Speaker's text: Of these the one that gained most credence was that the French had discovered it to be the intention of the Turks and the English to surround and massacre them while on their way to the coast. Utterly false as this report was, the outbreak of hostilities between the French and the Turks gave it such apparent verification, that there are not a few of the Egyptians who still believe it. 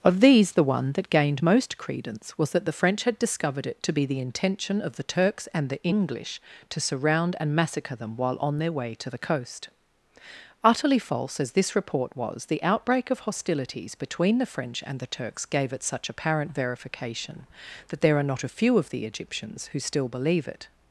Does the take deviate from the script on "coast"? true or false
false